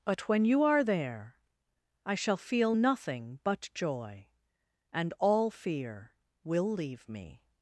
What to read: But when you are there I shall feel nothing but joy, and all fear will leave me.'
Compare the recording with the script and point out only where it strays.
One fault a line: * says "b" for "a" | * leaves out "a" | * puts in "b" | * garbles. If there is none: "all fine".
all fine